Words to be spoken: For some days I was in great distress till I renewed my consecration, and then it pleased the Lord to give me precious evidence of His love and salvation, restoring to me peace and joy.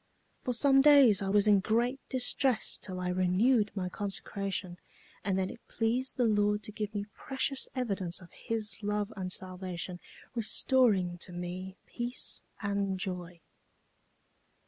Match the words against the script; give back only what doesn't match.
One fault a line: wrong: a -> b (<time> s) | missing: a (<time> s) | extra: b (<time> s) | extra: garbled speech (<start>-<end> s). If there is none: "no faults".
no faults